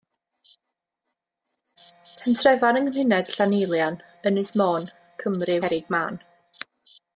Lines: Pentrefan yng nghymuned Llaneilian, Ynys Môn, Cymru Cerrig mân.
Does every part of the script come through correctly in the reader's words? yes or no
yes